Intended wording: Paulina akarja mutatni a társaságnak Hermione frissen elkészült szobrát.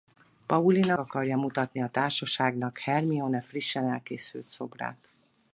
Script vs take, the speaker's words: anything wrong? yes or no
no